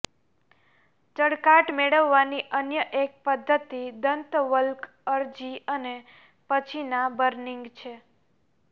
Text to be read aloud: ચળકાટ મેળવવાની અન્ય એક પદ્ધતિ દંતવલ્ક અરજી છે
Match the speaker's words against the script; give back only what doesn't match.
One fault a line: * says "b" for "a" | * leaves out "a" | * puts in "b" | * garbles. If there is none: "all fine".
* puts in "અને પછીના બર્નિંગ"